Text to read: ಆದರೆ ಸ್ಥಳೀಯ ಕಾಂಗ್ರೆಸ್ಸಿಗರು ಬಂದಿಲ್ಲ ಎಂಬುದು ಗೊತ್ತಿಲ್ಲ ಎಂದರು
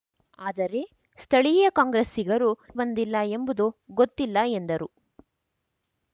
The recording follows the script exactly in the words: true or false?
true